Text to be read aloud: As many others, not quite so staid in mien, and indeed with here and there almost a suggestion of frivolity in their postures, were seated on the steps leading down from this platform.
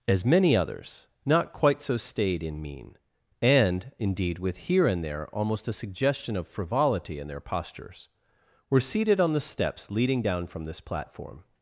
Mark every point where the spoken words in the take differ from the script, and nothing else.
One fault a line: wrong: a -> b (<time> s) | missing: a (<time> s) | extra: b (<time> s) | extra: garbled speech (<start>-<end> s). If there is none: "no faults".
no faults